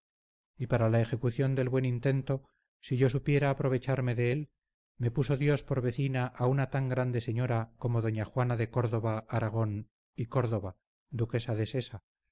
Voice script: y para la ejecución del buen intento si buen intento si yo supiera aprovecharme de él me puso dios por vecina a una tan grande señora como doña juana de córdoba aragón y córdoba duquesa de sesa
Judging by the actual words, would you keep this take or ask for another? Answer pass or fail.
fail